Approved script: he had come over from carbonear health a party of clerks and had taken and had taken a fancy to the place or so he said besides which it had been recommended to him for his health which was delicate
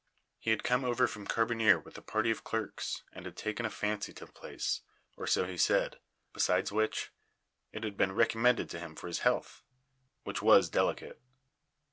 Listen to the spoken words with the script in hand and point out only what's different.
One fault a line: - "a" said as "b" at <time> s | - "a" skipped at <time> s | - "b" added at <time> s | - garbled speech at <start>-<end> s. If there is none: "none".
- "health" said as "with" at 1.8 s
- "and had taken" skipped at 3.7 s